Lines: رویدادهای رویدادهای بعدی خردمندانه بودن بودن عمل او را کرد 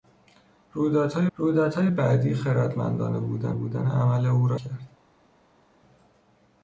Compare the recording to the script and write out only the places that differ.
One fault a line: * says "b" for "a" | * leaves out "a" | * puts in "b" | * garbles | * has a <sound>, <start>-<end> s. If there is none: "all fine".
all fine